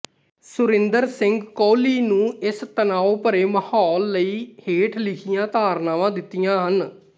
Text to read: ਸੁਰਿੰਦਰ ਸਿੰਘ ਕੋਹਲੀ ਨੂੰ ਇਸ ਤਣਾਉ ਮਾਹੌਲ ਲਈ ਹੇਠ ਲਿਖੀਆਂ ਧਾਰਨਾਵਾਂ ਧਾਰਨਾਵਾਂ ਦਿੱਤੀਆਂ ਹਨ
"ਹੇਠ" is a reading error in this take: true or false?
false